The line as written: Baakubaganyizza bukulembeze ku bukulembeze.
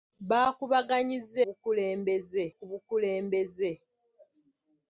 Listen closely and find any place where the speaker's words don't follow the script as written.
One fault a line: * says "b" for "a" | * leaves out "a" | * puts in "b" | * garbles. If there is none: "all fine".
all fine